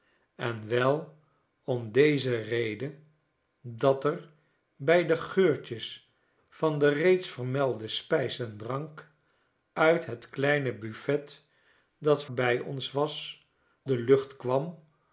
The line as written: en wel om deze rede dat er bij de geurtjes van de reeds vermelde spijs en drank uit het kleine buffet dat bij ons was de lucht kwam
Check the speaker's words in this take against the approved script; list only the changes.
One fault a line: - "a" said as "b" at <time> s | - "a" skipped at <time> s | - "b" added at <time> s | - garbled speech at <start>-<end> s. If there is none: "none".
none